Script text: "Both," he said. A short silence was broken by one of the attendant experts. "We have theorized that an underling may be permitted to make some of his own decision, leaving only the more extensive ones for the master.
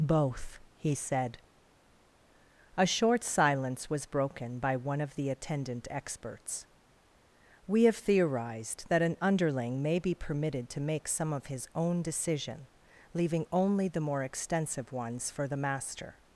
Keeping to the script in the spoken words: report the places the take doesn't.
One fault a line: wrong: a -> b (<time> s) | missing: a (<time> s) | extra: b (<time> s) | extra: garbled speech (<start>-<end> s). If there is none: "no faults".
no faults